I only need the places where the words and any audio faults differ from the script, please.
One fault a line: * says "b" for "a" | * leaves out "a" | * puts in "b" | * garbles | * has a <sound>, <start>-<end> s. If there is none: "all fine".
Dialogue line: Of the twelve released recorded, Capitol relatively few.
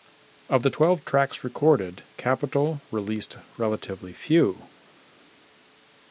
* says "tracks" for "released"
* puts in "released"